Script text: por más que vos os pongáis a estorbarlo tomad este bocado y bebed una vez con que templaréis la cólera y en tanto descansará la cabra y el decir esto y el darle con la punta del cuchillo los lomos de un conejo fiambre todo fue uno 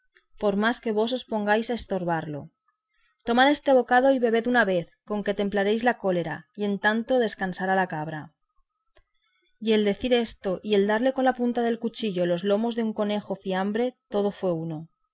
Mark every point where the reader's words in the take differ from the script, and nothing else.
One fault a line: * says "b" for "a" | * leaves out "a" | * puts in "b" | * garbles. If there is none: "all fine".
all fine